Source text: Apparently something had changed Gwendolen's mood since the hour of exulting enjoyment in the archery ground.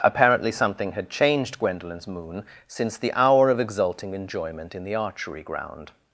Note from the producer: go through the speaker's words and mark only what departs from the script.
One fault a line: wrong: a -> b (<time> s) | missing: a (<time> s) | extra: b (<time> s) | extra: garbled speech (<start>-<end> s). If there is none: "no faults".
wrong: mood -> moon (2.1 s)